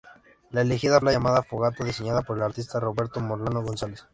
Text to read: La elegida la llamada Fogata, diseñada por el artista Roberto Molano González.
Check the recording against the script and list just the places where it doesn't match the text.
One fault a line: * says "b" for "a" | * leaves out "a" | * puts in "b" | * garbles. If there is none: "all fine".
all fine